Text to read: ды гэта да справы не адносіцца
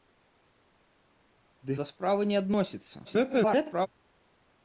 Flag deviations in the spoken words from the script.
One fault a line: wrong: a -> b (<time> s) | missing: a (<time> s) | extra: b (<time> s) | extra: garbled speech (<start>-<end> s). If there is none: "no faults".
missing: гэта (1.8 s)
extra: garbled speech (3.0-3.9 s)